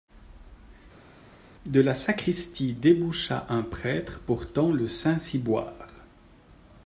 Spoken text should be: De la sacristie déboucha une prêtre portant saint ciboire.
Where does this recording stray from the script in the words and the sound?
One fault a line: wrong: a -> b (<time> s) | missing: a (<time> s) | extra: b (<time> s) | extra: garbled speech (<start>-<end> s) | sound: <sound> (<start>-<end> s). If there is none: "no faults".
wrong: une -> un (3.5 s)
extra: le (4.7 s)